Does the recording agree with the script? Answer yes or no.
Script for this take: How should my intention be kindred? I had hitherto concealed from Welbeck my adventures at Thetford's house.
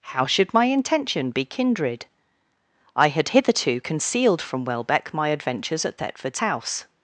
yes